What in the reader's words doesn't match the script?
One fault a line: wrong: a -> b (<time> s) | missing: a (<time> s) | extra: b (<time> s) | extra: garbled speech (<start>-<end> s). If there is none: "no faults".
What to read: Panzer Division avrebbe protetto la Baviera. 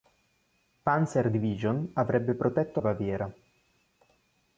missing: la (2.8 s)